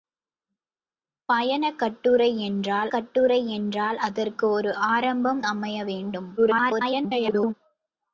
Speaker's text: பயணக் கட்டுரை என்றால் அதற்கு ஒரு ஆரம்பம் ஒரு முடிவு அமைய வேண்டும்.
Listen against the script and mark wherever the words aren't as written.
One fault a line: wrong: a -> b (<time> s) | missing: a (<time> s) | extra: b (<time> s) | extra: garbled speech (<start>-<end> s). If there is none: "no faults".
extra: கட்டுரை என்றால் (2.9 s)
missing: ஒரு முடிவு (5.4 s)
extra: garbled speech (6.4-7.5 s)